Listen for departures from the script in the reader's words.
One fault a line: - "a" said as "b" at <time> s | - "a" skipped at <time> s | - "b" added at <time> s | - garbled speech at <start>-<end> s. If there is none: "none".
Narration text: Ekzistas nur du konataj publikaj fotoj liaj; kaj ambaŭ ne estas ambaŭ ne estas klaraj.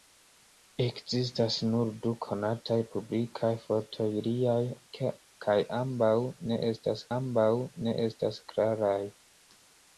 none